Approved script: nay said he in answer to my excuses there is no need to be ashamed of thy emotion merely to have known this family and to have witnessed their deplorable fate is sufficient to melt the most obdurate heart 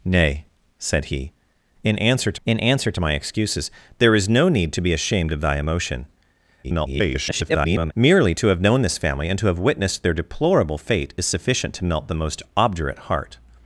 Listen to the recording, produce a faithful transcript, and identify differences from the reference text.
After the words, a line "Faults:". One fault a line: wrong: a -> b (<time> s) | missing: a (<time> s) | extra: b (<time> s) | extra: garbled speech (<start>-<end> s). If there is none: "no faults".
nay said he in answer to in answer to my excuses there is no need to be ashamed of thy emotion [garbled] merely to have known this family and to have witnessed their deplorable fate is sufficient to melt the most obdurate heart
Faults:
extra: in answer to (2.5 s)
extra: garbled speech (6.6-7.9 s)